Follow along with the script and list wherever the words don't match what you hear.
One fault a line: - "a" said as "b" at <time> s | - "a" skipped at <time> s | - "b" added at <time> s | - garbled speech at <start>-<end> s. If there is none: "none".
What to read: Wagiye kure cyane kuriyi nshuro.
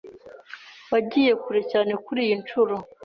none